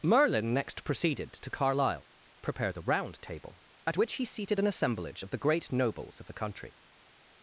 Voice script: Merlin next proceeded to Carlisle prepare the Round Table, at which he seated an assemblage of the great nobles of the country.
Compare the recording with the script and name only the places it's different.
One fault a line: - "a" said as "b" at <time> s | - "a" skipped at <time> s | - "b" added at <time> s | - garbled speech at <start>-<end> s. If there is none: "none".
none